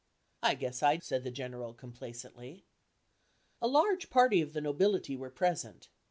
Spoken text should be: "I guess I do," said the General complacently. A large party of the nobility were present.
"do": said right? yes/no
no